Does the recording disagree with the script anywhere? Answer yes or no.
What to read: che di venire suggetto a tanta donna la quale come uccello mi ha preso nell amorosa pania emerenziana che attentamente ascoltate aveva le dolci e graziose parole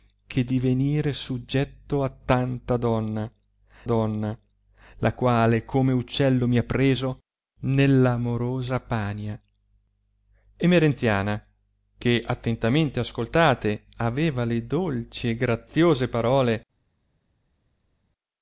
yes